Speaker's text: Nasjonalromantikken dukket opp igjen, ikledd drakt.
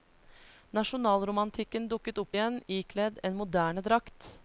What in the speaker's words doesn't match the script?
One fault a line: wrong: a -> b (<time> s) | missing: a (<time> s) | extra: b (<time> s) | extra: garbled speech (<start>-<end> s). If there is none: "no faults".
extra: en moderne (3.2 s)